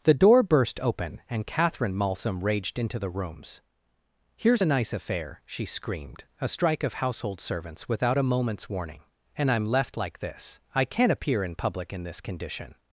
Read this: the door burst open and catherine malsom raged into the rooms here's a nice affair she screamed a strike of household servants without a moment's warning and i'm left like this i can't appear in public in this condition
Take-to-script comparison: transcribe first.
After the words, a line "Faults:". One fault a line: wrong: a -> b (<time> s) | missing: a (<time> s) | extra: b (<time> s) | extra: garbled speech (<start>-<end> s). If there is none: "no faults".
the door burst open and catherine malsom raged into the rooms here's a nice affair she screamed a strike of household servants without a moment's warning and i'm left like this i can't appear in public in this condition
Faults:
no faults